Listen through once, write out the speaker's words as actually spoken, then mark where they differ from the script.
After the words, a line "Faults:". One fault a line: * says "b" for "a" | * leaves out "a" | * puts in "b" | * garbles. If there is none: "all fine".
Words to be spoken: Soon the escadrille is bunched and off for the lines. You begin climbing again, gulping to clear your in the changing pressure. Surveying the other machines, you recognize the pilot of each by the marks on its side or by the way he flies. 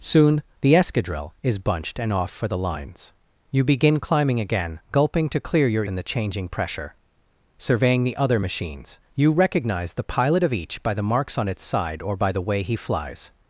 Soon the escadrille is bunched and off for the lines. You begin climbing again, gulping to clear your in the changing pressure. Surveying the other machines, you recognize the pilot of each by the marks on its side or by the way he flies.
Faults:
all fine